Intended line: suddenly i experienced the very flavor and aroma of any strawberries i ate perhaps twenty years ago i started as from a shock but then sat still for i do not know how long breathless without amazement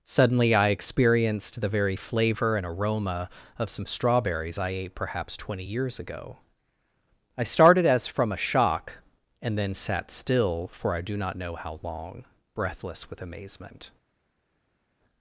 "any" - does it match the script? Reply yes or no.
no